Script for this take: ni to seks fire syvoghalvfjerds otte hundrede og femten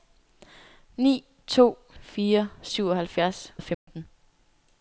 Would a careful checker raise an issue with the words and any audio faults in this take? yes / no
yes